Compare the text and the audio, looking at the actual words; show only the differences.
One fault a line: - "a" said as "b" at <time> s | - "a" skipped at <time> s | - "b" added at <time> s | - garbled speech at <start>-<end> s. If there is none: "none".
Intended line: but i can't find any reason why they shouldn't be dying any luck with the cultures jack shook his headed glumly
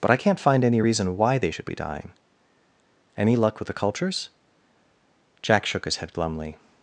- "shouldn't" said as "should" at 1.5 s
- "headed" said as "head" at 6.0 s